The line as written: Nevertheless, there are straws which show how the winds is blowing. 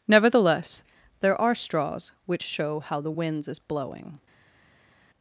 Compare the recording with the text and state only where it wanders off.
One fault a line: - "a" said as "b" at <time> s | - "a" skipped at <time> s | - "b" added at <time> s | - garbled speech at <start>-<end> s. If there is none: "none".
none